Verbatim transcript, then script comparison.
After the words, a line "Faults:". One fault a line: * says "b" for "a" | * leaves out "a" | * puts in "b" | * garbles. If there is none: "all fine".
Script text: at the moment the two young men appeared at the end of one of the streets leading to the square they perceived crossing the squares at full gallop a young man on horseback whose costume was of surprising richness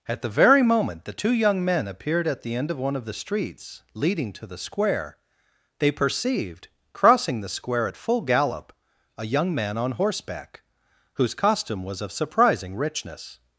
at the very moment the two young men appeared at the end of one of the streets leading to the square they perceived crossing the square at full gallop a young man on horseback whose costume was of surprising richness
Faults:
* puts in "very"
* says "square" for "squares"